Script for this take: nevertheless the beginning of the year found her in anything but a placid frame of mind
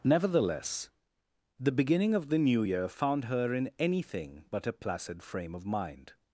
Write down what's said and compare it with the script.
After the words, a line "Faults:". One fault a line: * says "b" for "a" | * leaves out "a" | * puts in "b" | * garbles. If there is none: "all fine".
nevertheless the beginning of the new year found her in anything but a placid frame of mind
Faults:
* puts in "new"